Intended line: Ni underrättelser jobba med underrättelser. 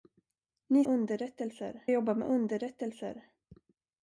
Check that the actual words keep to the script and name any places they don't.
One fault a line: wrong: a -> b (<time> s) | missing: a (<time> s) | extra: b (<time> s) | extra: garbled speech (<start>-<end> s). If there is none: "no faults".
no faults